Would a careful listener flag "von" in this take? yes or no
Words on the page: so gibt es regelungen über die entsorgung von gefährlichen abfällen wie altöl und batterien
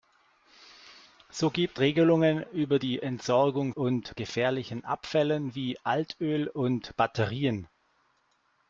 yes